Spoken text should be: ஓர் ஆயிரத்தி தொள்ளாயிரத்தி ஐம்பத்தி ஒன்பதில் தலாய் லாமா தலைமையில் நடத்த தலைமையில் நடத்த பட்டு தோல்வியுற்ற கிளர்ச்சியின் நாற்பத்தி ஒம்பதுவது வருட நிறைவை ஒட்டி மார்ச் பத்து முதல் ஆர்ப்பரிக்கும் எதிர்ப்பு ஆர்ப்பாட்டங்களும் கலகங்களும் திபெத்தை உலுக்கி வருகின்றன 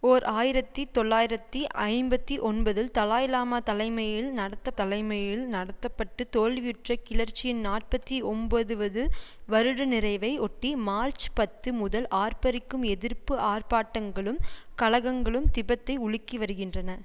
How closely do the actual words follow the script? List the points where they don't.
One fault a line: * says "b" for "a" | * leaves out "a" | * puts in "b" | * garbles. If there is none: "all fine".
all fine